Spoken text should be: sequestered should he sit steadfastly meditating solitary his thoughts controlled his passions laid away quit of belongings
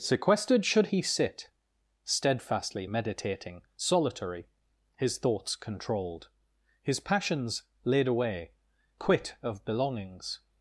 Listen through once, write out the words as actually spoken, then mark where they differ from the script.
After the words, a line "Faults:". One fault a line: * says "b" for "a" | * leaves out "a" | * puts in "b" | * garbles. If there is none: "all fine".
sequestered should he sit steadfastly meditating solitary his thoughts controlled his passions laid away quit of belongings
Faults:
all fine